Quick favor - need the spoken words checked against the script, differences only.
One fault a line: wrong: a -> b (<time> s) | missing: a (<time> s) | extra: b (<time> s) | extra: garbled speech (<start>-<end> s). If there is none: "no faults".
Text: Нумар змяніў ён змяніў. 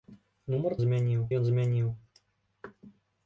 no faults